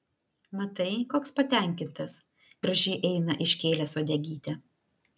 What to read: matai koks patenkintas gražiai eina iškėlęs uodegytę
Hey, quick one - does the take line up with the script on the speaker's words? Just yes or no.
yes